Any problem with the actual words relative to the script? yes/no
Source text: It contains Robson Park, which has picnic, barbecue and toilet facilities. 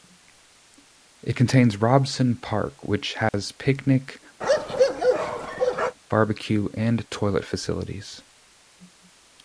no